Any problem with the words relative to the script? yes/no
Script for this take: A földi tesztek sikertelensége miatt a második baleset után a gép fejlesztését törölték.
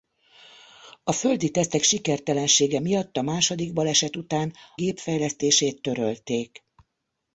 yes